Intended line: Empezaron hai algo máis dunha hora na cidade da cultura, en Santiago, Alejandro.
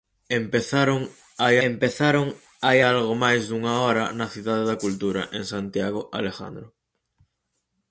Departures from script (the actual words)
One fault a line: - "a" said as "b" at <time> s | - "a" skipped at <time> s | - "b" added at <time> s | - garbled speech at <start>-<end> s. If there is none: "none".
- "empezaron hai" added at 1.7 s